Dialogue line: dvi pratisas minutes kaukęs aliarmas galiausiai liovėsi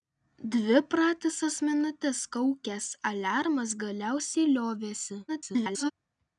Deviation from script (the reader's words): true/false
true